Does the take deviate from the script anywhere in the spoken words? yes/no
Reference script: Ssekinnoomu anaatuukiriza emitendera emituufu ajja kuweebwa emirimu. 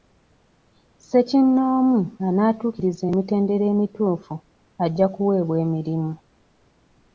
no